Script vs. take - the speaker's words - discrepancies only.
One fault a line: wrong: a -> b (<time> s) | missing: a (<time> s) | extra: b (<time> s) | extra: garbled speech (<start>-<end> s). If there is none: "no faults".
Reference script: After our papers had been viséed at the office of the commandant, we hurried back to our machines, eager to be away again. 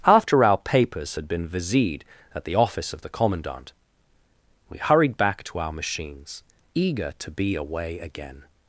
no faults